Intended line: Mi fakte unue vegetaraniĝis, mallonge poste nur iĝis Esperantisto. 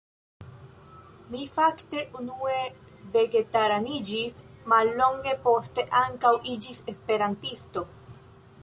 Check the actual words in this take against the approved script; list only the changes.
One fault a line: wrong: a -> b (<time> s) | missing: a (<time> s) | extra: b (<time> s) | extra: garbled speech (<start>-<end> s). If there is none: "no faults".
wrong: nur -> ankaŭ (6.0 s)